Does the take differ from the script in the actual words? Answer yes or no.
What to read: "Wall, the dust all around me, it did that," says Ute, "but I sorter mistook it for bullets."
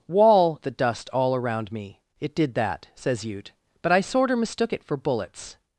no